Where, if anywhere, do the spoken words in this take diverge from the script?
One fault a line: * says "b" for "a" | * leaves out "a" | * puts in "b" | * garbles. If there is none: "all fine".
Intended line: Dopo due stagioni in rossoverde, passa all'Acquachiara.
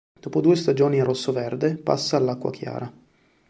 all fine